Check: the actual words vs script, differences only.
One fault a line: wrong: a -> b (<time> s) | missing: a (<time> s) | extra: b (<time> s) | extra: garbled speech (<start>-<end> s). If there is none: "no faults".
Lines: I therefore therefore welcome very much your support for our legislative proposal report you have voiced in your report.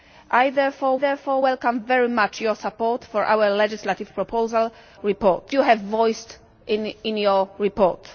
no faults